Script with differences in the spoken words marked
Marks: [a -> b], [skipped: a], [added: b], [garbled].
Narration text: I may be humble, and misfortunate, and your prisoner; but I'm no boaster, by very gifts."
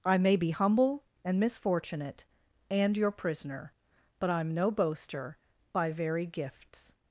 I may be humble, and misfortunate, and your prisoner; but I'm no boaster, by very gifts."